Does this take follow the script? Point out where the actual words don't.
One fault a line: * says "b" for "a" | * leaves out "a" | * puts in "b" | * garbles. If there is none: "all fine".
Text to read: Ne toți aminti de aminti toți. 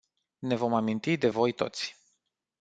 * says "vom" for "toți"
* says "voi" for "aminti"